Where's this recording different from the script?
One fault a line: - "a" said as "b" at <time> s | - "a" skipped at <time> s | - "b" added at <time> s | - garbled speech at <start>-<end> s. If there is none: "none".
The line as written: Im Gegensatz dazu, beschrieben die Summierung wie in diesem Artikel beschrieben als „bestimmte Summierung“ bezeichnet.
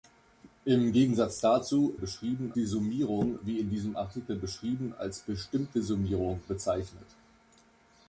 none